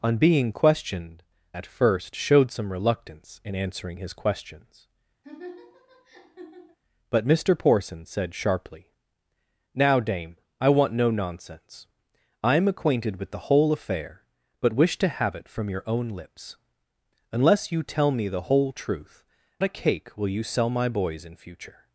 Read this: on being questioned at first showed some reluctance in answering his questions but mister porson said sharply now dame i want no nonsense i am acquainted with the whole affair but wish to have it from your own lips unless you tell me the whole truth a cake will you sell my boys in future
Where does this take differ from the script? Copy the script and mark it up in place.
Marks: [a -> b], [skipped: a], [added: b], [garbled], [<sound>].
on being questioned at first showed some reluctance in answering his questions [laugh] but mister porson said sharply now dame i want no nonsense i am acquainted with the whole affair but wish to have it from your own lips unless you tell me the whole truth a cake will you sell my boys in future